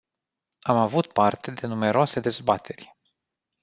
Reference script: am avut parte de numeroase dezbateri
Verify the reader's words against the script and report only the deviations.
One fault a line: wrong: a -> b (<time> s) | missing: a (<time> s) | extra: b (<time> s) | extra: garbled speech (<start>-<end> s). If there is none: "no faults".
no faults